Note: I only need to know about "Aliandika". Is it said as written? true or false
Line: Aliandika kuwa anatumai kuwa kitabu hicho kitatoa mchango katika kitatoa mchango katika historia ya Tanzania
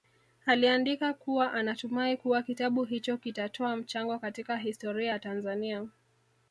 true